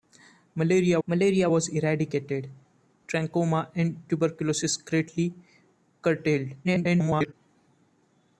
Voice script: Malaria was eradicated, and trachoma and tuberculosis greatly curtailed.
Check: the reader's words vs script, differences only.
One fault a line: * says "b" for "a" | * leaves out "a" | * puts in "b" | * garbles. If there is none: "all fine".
* puts in "malaria"
* leaves out "and"
* garbles